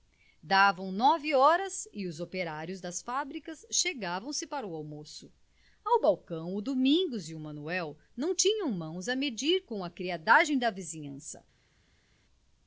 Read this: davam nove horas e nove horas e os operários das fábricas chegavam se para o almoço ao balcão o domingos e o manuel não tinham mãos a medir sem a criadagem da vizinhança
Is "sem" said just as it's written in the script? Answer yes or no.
no